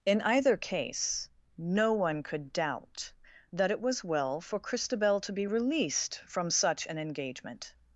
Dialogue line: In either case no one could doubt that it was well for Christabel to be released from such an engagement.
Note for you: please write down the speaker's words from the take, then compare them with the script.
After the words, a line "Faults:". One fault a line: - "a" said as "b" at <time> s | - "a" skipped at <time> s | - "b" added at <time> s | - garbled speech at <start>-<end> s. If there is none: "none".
In either case no one could doubt that it was well for Christabel to be released from such an engagement.
Faults:
none